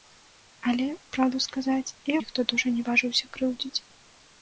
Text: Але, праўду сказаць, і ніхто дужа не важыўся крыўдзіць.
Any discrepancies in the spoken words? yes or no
no